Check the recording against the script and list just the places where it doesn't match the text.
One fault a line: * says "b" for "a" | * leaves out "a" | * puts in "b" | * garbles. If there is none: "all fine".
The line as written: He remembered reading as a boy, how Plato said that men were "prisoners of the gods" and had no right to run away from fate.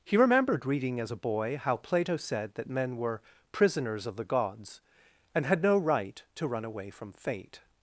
all fine